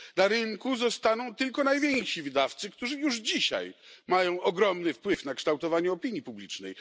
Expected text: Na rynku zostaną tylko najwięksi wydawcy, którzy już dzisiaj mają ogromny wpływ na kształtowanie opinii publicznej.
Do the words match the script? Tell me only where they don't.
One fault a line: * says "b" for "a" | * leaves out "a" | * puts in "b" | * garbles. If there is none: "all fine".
all fine